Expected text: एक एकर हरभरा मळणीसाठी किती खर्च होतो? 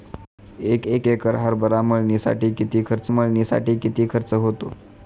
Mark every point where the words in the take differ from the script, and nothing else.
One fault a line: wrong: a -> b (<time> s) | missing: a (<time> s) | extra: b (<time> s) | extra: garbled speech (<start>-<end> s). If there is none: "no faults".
extra: एक (0.9 s)
extra: मळणीसाठी किती खर्च (3.1 s)